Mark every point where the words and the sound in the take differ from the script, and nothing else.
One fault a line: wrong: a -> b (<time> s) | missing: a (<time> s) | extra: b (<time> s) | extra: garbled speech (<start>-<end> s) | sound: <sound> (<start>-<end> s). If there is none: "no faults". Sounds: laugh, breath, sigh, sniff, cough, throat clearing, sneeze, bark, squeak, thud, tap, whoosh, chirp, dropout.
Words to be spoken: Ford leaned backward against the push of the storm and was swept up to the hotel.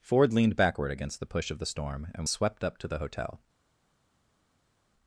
missing: was (2.2 s)